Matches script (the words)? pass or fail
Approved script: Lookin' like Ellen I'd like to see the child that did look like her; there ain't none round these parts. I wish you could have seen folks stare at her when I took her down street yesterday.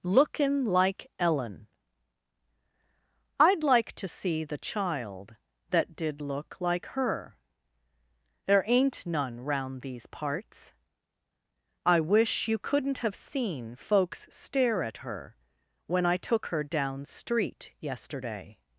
fail